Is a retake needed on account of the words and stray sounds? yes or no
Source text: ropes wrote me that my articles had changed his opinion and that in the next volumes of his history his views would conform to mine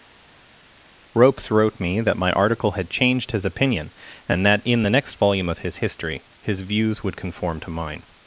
yes